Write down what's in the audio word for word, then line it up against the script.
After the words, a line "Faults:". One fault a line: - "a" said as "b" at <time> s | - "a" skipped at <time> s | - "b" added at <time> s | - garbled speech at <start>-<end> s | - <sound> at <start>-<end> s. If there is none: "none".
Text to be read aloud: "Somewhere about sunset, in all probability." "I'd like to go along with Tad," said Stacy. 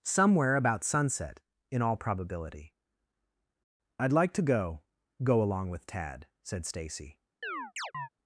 "Somewhere about sunset, in all probability." "I'd like to go go along with Tad," said Stacy.
Faults:
- "go" added at 5.2 s
- chirp at 7.4-8.1 s